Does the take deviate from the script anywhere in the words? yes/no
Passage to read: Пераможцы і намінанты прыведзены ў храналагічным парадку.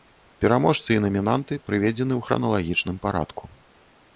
no